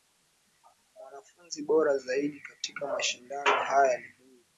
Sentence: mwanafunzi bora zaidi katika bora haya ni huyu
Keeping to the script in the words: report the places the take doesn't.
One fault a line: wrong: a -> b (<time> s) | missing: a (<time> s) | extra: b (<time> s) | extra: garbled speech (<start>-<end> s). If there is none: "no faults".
wrong: bora -> mashindano (2.9 s)